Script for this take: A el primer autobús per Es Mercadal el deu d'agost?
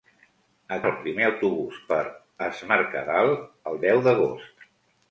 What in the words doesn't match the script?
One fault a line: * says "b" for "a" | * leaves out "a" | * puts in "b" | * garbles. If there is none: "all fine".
all fine